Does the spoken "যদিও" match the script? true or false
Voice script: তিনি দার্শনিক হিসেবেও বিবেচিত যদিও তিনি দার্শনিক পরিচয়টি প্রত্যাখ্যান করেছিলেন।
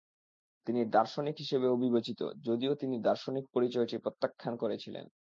true